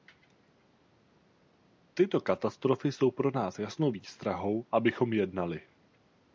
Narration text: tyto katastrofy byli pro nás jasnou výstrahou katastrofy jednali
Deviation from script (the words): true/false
true